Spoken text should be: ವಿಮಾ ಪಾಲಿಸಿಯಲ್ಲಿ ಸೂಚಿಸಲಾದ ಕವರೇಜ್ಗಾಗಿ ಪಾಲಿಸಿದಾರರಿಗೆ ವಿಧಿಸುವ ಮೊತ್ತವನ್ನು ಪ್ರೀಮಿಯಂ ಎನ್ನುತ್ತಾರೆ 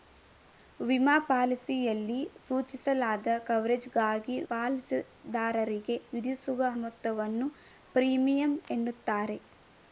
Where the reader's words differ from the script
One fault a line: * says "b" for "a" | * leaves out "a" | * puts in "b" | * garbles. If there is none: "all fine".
all fine